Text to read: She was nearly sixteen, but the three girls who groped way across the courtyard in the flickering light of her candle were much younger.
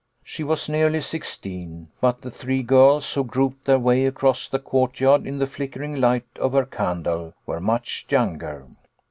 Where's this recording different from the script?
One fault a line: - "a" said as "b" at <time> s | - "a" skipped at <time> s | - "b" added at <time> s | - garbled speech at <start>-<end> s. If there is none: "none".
- "their" added at 3.6 s